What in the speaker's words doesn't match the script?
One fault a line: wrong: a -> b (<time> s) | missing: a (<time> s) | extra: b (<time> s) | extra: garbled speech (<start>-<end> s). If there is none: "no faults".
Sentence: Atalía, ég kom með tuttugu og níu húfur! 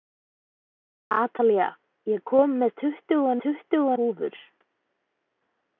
wrong: níu -> tuttugu (3.5 s)